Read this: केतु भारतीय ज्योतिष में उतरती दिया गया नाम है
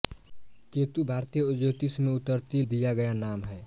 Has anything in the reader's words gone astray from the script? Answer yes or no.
no